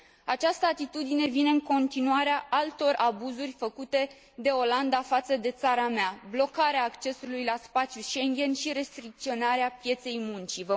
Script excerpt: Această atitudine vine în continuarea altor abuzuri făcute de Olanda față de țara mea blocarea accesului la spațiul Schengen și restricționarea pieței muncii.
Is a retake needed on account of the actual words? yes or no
no